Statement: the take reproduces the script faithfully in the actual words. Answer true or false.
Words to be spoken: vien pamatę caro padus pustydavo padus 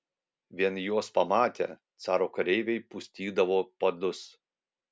false